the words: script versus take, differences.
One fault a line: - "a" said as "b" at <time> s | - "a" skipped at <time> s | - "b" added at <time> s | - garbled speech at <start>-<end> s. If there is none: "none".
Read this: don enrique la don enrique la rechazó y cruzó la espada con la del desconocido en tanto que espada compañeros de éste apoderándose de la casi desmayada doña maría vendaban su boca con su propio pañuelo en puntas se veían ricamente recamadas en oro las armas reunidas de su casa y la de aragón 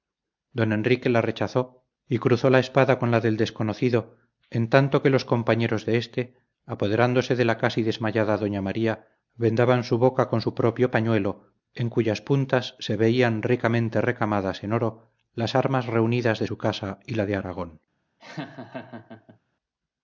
- "don enrique la" skipped at 1.2 s
- "espada" said as "los" at 5.1 s
- "cuyas" added at 11.9 s